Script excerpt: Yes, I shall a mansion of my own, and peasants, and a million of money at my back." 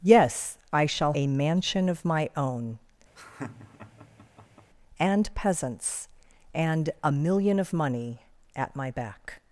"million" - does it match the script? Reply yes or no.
yes